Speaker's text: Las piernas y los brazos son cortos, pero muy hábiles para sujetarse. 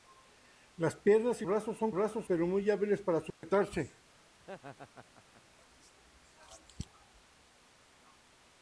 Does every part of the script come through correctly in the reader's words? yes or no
no